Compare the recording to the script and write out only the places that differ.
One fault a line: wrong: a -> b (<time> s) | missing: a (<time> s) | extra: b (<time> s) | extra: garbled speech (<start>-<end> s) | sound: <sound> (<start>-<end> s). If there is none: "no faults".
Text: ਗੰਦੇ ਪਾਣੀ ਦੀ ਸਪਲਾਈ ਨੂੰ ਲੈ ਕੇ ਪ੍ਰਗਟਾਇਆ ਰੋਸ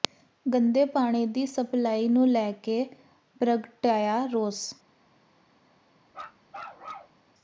sound: bark (6.1-7.2 s)